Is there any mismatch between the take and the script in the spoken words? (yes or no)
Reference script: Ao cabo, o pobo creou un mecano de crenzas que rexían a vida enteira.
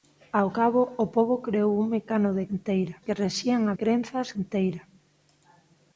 yes